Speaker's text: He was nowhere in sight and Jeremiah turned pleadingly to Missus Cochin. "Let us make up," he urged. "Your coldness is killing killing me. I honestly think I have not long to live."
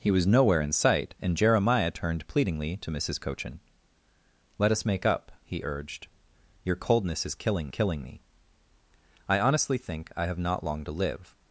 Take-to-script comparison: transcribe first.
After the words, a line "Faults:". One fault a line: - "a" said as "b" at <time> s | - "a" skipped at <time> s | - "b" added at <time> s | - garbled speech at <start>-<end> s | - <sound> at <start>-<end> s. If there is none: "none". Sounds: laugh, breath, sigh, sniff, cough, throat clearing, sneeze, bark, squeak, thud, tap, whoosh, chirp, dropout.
He was nowhere in sight and Jeremiah turned pleadingly to Missus Cochin. "Let us make up," he urged. "Your coldness is killing killing me. I honestly think I have not long to live."
Faults:
none